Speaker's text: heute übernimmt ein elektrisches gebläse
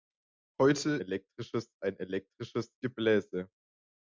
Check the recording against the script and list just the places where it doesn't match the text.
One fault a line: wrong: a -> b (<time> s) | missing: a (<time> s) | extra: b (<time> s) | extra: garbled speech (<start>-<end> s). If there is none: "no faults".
wrong: übernimmt -> elektrisches (1.0 s)